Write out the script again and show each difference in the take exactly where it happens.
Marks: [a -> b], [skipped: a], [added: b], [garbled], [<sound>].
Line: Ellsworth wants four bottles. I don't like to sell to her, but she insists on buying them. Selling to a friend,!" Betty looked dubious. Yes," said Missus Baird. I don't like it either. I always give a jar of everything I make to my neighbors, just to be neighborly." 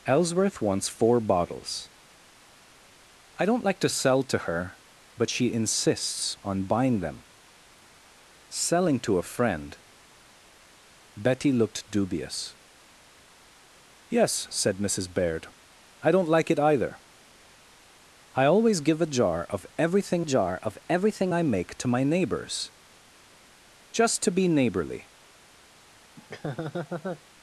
Ellsworth wants four bottles. I don't like to sell to her, but she insists on buying them. Selling to a friend,!" Betty looked dubious. Yes," said Missus Baird. I don't like it either. I always give a jar of everything [added: jar of everything] I make to my neighbors, just to be neighborly." [laugh]